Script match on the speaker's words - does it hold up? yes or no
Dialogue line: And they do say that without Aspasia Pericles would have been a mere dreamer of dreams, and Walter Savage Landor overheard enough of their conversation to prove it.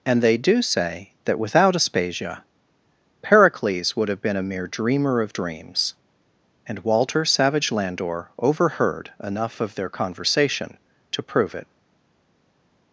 yes